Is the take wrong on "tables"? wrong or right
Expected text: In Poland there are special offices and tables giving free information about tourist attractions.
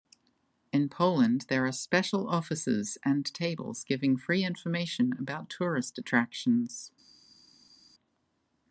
right